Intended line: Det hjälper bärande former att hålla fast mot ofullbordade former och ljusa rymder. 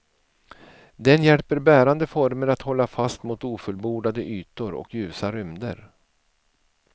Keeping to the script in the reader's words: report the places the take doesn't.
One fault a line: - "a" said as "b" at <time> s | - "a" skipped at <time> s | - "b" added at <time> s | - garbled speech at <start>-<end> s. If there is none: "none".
- "Det" said as "Den" at 0.9 s
- "former" said as "ytor" at 4.2 s